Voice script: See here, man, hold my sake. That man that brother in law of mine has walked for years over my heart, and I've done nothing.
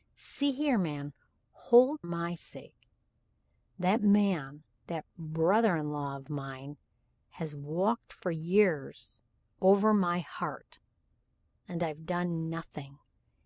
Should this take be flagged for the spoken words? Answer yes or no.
no